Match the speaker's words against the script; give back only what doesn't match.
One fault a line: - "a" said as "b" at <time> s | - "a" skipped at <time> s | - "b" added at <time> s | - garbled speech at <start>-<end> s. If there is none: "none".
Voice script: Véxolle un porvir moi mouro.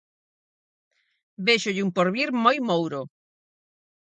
none